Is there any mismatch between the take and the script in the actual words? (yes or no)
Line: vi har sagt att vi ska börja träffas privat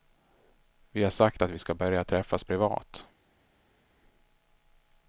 no